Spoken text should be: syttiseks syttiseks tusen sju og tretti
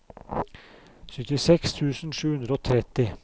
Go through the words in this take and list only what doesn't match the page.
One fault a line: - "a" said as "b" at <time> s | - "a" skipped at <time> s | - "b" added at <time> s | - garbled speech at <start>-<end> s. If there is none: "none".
- "syttiseks" skipped at 1.7 s
- "hundre" added at 2.3 s